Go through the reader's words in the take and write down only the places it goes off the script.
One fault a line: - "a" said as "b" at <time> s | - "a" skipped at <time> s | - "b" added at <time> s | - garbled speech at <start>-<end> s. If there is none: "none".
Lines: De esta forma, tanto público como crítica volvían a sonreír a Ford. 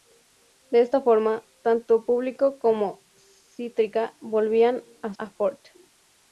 - "sonreír" skipped at 5.1 s